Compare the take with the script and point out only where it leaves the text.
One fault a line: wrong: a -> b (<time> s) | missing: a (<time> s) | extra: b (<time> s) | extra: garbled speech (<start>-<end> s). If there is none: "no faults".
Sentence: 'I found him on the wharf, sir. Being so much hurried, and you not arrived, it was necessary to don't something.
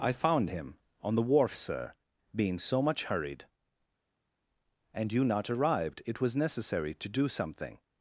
wrong: don't -> do (7.1 s)